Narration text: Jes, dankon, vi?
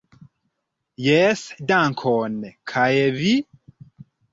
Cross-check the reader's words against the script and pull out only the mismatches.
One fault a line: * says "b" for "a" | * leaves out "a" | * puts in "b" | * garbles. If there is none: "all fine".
* puts in "kaj"